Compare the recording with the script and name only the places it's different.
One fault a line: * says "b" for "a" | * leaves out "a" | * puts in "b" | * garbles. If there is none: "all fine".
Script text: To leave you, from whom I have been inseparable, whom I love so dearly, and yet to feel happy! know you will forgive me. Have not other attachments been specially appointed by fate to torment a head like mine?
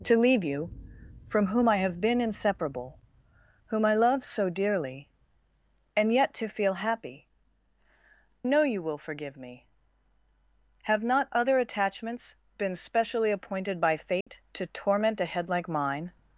all fine